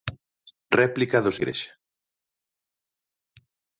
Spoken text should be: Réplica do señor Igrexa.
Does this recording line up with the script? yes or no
no